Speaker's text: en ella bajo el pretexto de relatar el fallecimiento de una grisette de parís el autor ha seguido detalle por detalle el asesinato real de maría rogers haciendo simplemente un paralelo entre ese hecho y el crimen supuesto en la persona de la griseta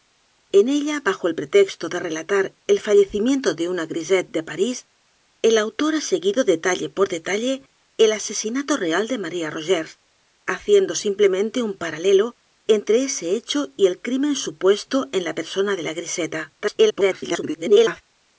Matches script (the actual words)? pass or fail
fail